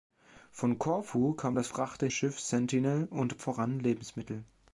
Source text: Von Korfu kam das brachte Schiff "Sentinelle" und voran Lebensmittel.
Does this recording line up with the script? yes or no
yes